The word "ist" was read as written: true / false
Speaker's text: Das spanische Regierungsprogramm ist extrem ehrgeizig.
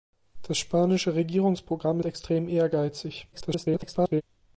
false